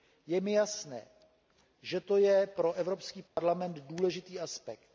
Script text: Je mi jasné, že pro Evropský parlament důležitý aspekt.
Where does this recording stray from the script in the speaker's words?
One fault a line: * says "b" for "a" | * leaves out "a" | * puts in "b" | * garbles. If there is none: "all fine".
* puts in "to je"